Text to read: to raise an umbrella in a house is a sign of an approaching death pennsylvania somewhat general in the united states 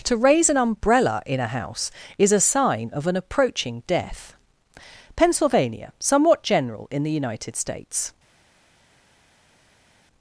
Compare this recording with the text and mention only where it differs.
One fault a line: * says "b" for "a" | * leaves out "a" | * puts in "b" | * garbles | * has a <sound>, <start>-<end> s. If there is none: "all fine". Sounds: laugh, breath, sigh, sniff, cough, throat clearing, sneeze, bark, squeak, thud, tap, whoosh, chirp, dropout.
all fine